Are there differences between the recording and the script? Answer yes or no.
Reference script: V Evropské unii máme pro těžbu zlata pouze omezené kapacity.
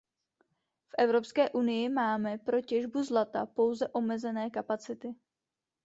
no